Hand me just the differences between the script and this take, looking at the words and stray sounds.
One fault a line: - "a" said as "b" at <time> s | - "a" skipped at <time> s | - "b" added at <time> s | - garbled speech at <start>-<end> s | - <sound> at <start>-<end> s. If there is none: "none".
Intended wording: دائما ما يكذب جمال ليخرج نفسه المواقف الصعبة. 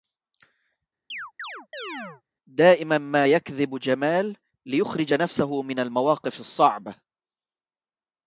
- chirp at 1.1-2.2 s
- "من" added at 5.6 s